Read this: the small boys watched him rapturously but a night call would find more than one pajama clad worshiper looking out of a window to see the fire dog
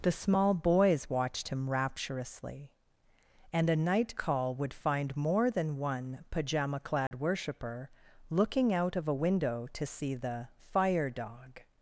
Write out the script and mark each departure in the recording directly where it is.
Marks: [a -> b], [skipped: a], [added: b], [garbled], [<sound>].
the small boys watched him rapturously [but -> and] a night call would find more than one pajama clad [dropout] worshiper looking out of a window to see the fire dog